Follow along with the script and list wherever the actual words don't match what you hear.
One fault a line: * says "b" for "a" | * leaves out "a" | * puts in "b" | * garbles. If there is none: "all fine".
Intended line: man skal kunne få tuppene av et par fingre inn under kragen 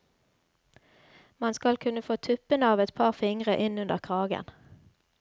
all fine